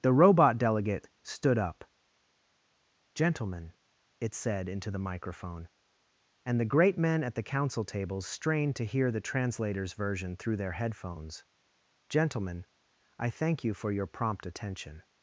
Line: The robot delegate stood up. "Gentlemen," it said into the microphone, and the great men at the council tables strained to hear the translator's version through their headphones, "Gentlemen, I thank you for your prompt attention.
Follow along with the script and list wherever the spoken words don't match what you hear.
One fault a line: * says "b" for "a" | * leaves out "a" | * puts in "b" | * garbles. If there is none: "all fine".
all fine